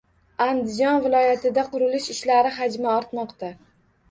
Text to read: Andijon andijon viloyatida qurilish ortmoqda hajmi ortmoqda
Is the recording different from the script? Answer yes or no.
yes